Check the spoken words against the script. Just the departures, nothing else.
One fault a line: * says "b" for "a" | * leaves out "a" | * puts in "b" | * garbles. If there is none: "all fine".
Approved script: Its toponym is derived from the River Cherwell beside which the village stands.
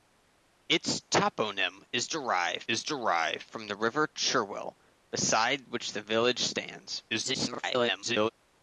* puts in "is derived"
* garbles